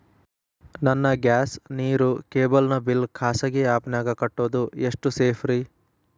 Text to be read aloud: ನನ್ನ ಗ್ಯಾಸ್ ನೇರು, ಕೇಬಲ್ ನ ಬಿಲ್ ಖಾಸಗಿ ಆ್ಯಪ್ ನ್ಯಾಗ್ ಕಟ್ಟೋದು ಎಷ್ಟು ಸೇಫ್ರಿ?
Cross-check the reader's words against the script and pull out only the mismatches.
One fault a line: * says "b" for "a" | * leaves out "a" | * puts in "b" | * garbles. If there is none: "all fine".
all fine